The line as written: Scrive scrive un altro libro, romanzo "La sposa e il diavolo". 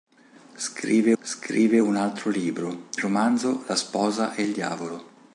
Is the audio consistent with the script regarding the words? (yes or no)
yes